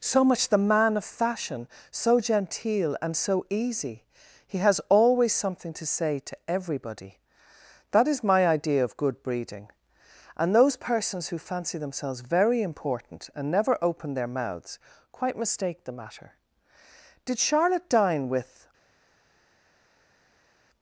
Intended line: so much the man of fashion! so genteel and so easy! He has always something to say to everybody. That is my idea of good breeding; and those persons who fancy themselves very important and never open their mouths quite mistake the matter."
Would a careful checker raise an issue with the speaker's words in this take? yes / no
yes